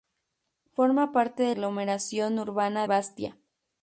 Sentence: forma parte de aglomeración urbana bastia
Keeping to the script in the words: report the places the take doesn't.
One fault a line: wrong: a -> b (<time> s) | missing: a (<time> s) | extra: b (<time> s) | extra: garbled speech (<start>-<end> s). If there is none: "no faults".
no faults